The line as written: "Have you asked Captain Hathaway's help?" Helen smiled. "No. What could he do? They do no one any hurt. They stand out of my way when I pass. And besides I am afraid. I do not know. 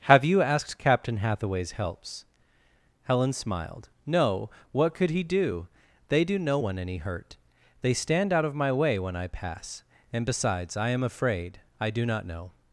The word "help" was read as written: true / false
false